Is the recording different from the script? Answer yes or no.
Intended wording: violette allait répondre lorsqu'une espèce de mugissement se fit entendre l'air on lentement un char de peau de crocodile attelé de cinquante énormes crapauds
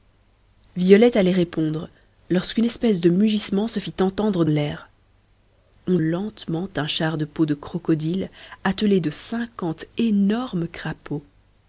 no